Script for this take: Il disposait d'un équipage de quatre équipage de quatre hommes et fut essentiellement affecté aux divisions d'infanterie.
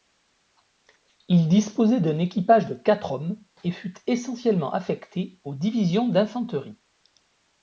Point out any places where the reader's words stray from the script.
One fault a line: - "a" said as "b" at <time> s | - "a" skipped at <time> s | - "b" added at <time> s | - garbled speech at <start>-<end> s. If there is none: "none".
- "équipage de quatre" skipped at 3.1 s